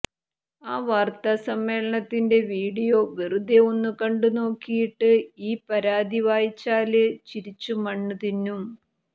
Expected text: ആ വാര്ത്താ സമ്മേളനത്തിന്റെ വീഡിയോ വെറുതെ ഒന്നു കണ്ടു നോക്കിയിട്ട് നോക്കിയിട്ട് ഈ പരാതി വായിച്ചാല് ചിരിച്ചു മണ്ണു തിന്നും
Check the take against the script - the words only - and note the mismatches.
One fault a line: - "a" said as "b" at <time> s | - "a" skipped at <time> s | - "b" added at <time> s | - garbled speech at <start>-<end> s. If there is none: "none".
- "നോക്കിയിട്ട്" skipped at 5.1 s